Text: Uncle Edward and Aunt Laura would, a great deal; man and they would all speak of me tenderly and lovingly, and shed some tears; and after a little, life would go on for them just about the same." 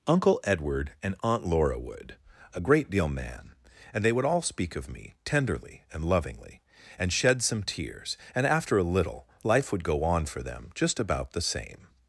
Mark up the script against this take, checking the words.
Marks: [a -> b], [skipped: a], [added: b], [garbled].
Uncle Edward and Aunt Laura would, a great deal; man and they would all speak of me tenderly and lovingly, and shed some tears; and after a little, life would go on for them just about the same."